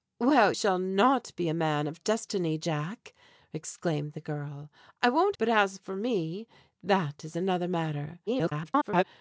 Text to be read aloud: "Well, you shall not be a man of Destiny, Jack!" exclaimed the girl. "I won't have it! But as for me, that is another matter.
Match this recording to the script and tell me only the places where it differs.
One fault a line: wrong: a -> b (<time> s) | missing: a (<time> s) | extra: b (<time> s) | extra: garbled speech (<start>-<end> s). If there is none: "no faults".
missing: you (0.5 s)
missing: have it (5.4 s)
extra: garbled speech (8.3-9.0 s)